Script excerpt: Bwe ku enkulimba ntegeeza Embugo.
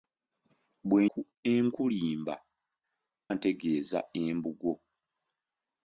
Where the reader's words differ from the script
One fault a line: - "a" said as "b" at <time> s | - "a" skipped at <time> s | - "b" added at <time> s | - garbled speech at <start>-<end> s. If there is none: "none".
none